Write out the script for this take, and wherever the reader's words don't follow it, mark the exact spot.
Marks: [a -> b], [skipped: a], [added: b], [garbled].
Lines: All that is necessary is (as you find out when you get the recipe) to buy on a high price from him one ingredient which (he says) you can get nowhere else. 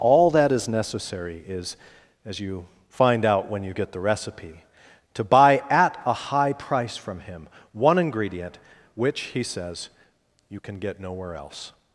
All that is necessary is (as you find out when you get the recipe) to buy [on -> at] a high price from him one ingredient which (he says) you can get nowhere else.